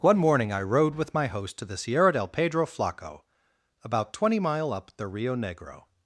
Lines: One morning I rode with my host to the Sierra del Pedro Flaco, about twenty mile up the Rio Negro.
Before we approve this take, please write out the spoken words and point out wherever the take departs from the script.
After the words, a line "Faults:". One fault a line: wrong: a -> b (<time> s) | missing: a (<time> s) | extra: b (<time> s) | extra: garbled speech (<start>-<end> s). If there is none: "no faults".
One morning I rode with my host to the Sierra del Pedro Flaco, about twenty mile up the Rio Negro.
Faults:
no faults